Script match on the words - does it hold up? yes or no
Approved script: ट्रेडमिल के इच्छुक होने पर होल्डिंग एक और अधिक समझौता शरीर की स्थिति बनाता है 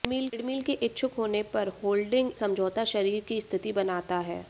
no